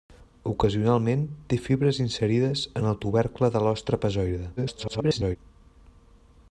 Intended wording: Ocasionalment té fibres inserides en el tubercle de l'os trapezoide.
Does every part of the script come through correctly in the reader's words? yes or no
no